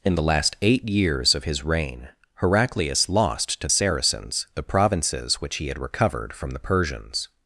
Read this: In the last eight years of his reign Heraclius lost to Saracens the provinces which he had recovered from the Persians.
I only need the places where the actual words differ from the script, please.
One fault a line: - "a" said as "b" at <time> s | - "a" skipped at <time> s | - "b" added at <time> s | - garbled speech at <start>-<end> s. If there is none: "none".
none